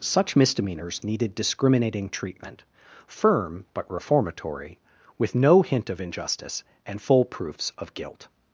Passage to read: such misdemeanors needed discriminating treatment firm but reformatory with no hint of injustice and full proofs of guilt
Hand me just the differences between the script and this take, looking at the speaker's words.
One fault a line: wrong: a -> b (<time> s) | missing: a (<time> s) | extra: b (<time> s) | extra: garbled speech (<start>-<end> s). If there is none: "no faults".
no faults